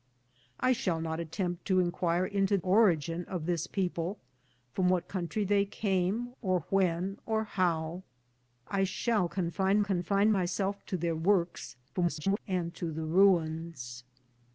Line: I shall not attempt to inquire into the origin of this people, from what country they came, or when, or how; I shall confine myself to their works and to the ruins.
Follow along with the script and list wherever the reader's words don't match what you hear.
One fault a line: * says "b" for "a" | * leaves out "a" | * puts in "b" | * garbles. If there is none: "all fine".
* leaves out "the"
* puts in "confine"
* garbles